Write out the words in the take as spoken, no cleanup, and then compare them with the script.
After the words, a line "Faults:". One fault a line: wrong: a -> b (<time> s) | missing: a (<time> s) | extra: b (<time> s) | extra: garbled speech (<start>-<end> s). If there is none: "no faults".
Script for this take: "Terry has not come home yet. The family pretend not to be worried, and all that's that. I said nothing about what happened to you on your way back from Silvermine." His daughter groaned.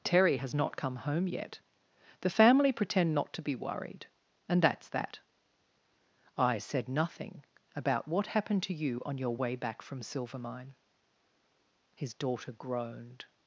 "Terry has not come home yet. The family pretend not to be worried, and that's that. I said nothing about what happened to you on your way back from Silvermine." His daughter groaned.
Faults:
missing: all (4.6 s)